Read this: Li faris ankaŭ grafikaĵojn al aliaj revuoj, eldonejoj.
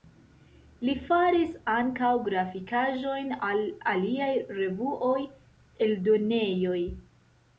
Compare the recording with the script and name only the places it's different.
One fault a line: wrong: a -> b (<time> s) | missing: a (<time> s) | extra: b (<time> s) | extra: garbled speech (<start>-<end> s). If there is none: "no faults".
no faults